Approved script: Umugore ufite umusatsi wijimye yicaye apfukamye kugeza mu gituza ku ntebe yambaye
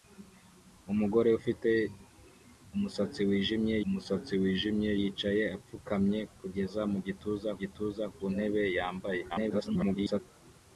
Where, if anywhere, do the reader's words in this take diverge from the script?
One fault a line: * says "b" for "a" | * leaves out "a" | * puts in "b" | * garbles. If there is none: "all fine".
* puts in "umusatsi wijimye"
* puts in "gituza"
* garbles